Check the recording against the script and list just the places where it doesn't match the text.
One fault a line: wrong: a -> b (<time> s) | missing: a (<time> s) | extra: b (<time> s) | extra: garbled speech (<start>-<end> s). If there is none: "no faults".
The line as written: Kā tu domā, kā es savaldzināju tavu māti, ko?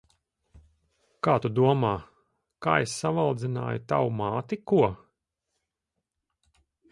no faults